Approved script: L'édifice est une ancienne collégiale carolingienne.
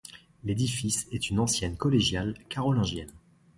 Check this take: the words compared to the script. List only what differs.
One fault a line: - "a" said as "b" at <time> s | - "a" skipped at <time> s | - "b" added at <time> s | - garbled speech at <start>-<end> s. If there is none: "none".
none